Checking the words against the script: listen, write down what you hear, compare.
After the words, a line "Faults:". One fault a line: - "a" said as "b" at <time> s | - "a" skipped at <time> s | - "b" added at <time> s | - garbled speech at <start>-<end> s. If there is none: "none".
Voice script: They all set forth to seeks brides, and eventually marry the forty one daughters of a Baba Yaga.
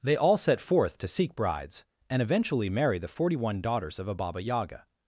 They all set forth to seek brides, and eventually marry the forty one daughters of a Baba Yaga.
Faults:
- "seeks" said as "seek" at 1.1 s